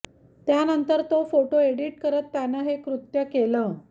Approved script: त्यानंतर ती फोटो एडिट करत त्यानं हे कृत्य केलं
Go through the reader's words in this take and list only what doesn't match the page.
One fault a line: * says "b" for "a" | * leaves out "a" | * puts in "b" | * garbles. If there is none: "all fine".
* says "तो" for "ती"